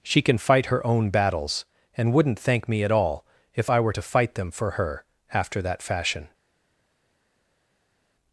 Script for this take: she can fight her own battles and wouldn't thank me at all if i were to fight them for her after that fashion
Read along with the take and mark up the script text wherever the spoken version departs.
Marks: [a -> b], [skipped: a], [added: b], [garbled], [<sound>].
she can fight her own battles and wouldn't thank me at all if i were to fight them for her after that fashion